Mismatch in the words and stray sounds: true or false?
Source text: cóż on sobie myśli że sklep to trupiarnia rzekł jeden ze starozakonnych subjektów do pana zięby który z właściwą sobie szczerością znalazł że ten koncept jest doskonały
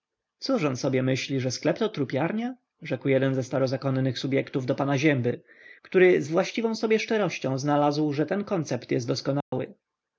true